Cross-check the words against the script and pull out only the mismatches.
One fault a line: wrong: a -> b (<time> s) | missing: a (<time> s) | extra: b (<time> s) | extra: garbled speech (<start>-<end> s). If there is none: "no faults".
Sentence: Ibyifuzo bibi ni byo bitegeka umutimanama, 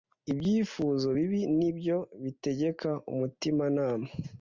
no faults